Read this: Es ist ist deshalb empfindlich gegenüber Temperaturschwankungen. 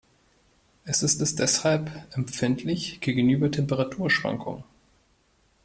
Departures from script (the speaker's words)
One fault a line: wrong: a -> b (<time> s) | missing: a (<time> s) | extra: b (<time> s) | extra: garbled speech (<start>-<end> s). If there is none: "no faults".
no faults